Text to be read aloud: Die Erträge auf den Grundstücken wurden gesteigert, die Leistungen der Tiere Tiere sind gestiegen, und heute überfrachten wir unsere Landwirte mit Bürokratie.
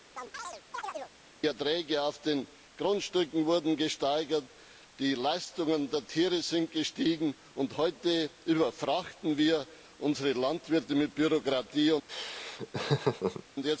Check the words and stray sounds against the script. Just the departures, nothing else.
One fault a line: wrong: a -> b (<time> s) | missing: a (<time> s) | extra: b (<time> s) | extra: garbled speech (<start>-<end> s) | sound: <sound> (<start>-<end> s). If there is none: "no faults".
sound: chirp (0.2-1.1 s)
missing: Tiere (6.4 s)
sound: laugh (12.1-13.4 s)